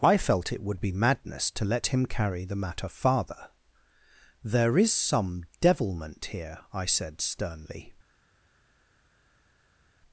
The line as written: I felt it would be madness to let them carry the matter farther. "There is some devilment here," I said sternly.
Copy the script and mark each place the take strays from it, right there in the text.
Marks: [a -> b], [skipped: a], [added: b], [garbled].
I felt it would be madness to let [them -> him] carry the matter farther. "There is some devilment here," I said sternly.